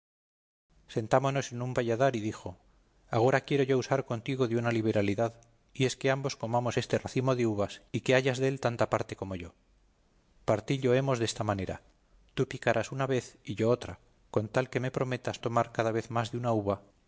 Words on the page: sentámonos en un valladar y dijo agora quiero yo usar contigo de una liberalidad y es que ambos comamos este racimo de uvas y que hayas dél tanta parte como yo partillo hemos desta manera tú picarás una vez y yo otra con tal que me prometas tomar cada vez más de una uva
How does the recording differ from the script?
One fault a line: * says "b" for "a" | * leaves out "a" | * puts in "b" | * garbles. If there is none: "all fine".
all fine